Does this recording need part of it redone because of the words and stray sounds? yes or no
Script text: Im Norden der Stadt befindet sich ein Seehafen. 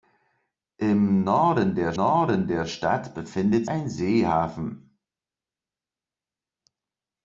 yes